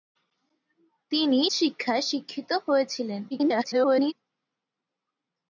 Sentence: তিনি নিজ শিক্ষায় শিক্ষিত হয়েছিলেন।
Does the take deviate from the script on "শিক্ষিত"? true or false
false